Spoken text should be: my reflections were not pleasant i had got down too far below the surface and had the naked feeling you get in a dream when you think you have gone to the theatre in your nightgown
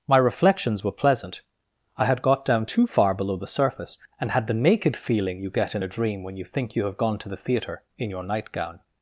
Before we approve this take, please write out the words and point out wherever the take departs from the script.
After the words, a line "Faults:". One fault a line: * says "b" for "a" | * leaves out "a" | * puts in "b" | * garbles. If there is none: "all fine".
my reflections were pleasant i had got down too far below the surface and had the naked feeling you get in a dream when you think you have gone to the theatre in your nightgown
Faults:
* leaves out "not"